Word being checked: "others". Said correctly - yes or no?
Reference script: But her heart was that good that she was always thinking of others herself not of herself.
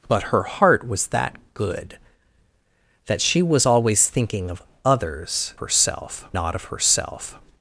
yes